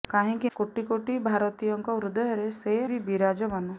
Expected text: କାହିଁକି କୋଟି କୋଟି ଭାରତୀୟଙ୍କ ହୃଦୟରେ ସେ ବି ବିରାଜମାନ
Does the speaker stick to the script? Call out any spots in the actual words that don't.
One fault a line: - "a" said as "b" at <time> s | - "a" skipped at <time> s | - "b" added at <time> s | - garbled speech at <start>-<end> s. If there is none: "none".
none